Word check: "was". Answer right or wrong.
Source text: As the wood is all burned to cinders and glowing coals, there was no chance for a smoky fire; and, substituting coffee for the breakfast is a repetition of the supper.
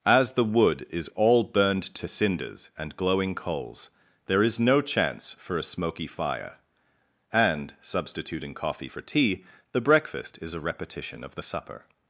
wrong